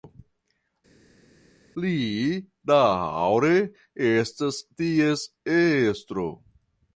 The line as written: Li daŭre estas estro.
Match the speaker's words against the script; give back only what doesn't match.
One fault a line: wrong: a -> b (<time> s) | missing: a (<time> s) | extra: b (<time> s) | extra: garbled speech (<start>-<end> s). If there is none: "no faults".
extra: ties (4.8 s)